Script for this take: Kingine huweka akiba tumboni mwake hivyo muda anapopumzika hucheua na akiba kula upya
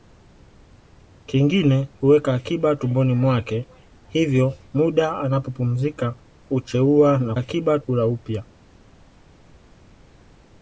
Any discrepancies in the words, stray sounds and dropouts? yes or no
no